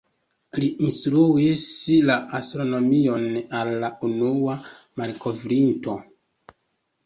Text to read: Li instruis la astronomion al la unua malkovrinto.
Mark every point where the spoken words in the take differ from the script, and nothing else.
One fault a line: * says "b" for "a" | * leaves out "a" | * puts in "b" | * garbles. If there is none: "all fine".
all fine